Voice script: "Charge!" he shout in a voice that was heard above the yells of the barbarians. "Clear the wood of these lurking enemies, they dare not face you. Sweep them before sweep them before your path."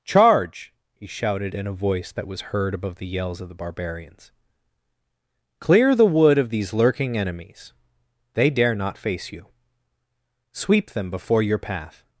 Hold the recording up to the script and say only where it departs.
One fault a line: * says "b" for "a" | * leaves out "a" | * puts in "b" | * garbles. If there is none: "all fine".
* says "shouted" for "shout"
* leaves out "sweep them before"